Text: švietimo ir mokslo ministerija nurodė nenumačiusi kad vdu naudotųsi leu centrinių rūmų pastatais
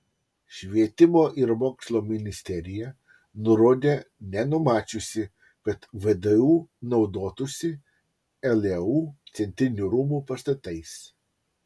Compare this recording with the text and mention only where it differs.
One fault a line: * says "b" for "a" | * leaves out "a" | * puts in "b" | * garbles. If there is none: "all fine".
all fine